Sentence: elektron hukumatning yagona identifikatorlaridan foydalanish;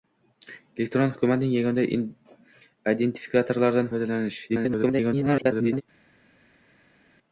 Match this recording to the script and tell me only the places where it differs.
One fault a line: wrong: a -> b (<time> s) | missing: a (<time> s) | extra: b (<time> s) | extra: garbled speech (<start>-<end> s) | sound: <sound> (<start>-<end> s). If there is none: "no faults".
extra: garbled speech (4.5-5.8 s)